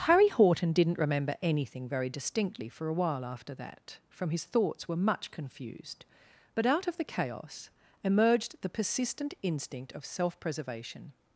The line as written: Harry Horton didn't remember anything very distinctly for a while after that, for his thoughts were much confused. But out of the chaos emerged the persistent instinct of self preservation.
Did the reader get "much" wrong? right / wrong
right